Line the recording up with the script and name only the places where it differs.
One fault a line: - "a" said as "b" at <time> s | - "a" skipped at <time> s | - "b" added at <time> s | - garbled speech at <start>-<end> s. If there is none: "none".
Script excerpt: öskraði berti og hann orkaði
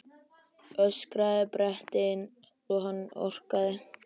none